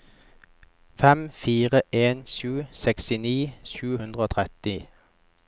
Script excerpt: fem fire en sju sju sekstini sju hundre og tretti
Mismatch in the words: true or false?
true